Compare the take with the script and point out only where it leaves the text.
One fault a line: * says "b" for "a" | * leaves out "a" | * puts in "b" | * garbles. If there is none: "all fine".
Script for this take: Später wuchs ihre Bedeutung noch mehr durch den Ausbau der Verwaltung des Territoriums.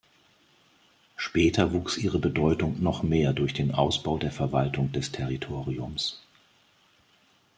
all fine